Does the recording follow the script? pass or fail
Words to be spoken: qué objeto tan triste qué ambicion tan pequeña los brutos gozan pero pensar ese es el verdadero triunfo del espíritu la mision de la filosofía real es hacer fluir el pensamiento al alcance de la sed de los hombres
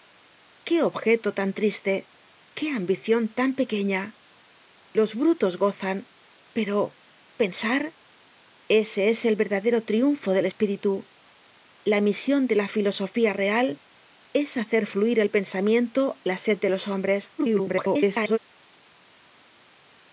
fail